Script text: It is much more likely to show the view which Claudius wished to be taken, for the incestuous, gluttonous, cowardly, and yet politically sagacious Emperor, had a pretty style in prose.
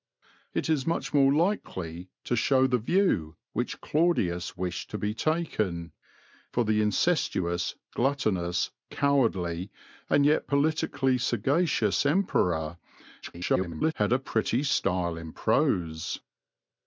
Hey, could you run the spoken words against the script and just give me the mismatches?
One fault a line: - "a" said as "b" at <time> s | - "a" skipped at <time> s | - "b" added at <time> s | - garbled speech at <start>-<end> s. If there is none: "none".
- garbled speech at 13.2-13.9 s